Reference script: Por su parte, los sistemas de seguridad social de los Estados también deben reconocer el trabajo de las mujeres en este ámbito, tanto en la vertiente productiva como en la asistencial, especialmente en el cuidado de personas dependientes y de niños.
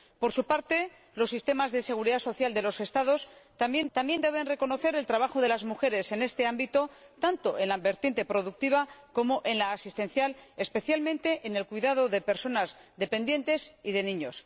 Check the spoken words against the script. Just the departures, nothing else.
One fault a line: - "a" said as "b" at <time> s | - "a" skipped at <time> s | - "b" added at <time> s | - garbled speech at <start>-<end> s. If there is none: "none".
- "también" added at 3.9 s